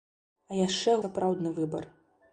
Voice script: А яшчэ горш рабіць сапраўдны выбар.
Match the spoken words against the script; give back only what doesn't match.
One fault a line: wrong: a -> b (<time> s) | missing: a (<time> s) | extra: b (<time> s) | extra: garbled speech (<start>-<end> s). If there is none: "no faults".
missing: горш рабіць (0.9 s)